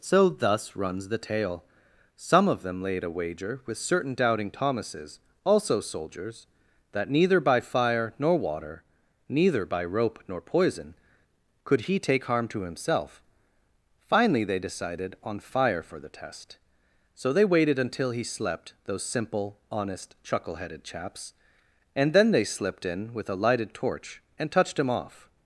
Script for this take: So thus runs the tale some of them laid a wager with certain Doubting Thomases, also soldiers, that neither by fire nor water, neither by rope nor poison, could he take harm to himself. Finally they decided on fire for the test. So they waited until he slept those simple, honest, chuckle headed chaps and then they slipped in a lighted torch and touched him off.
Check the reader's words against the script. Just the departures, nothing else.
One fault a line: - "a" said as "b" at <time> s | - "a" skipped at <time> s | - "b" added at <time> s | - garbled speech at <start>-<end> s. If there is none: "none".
- "with" added at 23.1 s